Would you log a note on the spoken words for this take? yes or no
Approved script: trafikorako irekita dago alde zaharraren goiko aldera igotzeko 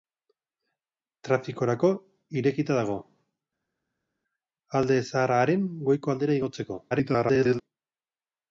yes